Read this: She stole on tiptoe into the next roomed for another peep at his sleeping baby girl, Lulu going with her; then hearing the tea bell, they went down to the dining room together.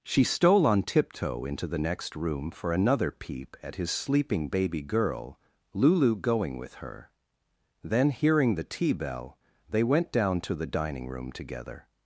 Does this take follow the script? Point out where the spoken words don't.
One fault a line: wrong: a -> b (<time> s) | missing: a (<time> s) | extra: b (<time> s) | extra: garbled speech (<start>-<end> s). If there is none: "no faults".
wrong: roomed -> room (2.1 s)